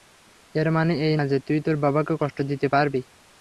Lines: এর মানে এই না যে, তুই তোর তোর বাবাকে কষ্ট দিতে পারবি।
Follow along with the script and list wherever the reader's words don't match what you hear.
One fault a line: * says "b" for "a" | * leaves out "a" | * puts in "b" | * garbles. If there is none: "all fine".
* leaves out "তোর"